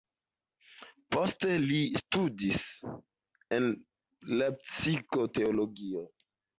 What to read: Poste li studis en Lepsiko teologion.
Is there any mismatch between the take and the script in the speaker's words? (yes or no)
no